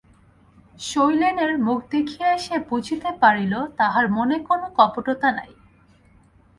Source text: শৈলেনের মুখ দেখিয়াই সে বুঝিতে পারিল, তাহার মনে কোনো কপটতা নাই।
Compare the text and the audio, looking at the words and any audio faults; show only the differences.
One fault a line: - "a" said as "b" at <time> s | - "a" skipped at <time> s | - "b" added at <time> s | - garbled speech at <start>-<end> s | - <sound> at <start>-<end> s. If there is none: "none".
none